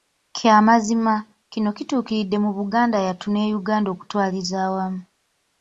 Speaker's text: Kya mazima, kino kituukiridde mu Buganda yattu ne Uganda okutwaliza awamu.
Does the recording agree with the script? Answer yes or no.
yes